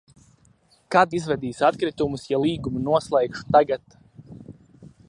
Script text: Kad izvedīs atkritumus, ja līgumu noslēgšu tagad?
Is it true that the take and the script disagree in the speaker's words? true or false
false